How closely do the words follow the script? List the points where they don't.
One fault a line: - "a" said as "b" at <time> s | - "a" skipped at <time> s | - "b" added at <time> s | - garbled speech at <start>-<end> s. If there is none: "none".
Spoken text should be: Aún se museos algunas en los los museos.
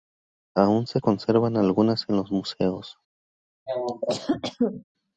- "museos" said as "conservan" at 1.0 s
- "los" skipped at 2.3 s